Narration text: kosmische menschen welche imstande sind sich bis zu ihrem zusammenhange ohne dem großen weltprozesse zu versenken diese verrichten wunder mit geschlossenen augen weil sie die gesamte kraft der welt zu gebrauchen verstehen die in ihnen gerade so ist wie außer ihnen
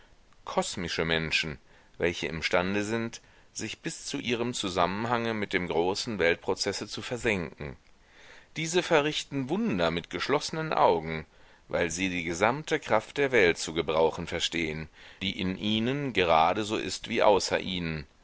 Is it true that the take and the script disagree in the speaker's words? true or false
true